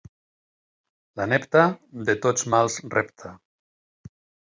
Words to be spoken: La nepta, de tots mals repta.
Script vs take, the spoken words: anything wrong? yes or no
no